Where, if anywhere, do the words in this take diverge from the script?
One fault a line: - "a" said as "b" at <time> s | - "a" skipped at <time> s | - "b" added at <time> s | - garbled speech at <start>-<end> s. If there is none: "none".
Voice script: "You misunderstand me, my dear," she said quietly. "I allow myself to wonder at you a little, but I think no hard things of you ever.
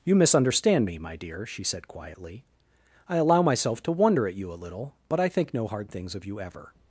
none